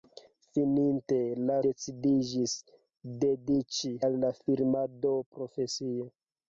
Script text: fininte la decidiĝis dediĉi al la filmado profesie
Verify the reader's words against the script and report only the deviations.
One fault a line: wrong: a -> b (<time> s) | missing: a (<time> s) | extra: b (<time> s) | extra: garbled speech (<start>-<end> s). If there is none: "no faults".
no faults